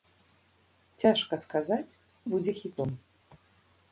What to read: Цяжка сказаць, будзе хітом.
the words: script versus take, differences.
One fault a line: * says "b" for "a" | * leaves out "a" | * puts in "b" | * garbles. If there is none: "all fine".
all fine